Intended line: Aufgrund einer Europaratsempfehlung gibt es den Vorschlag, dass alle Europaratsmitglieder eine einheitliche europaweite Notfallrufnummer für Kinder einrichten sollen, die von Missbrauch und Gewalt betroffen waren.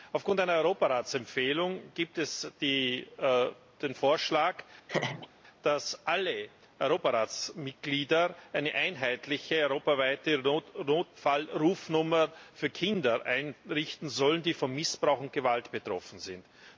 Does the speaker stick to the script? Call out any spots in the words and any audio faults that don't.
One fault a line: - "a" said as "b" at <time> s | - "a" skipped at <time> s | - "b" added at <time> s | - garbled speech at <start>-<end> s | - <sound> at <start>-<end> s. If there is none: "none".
- laugh at 4.9-5.3 s
- "waren" said as "sind" at 16.2 s